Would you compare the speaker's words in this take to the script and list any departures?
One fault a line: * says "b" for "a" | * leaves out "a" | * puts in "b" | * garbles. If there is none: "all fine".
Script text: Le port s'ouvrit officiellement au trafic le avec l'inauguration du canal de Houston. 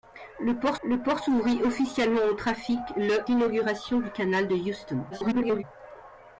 * puts in "le port"
* leaves out "avec"
* garbles